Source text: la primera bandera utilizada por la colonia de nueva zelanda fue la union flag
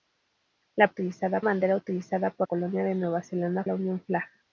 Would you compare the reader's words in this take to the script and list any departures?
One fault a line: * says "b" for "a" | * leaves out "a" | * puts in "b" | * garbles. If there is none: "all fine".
* says "utilizada" for "primera"
* leaves out "la"
* leaves out "fue"